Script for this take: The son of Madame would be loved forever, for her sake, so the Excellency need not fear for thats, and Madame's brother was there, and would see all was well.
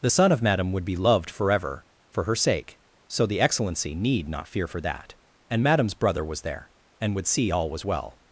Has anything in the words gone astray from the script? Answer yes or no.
yes